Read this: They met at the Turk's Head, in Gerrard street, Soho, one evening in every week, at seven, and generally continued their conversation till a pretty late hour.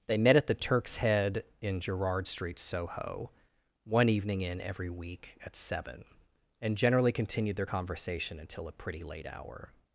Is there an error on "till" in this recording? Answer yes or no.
yes